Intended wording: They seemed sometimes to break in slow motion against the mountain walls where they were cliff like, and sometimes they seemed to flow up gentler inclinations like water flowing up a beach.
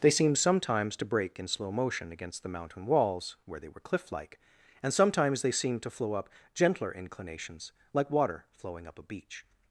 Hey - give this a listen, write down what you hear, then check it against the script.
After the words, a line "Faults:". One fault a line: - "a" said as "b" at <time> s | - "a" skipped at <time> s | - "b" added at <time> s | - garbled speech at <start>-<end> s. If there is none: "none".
They seemed sometimes to break in slow motion against the mountain walls where they were cliff like, and sometimes they seemed to flow up gentler inclinations like water flowing up a beach.
Faults:
none